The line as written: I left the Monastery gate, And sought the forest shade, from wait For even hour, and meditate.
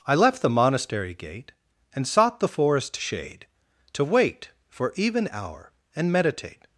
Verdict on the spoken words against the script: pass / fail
fail